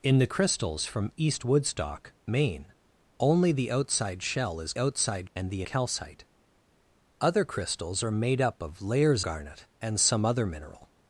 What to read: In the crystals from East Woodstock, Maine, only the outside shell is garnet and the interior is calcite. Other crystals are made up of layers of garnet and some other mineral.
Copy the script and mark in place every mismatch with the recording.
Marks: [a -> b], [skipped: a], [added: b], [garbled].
In the crystals from East Woodstock, Maine, only the outside shell is [garnet -> outside] and the [skipped: interior is] calcite. Other crystals are made up of layers [skipped: of] garnet and some other mineral.